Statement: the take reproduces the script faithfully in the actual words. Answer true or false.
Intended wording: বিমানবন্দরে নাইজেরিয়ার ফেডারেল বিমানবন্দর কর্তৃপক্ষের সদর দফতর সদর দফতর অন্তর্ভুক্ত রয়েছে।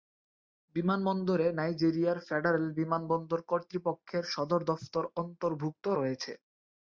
false